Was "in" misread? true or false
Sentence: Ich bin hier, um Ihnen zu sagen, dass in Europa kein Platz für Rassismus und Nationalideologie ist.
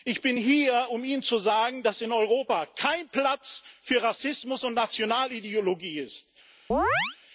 false